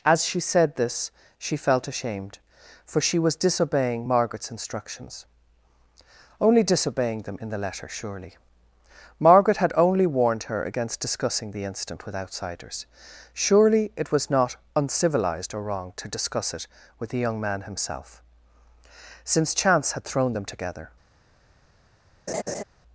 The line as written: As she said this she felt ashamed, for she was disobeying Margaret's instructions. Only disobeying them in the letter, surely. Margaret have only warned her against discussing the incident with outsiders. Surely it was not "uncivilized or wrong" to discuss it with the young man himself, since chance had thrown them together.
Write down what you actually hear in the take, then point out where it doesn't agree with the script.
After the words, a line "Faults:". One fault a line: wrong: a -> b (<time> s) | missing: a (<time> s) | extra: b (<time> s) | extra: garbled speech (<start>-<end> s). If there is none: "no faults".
As she said this she felt ashamed, for she was disobeying Margaret's instructions. Only disobeying them in the letter, surely. Margaret had only warned her against discussing the incident with outsiders. Surely it was not "uncivilized or wrong" to discuss it with the young man himself, since chance had thrown them together.
Faults:
wrong: have -> had (9.6 s)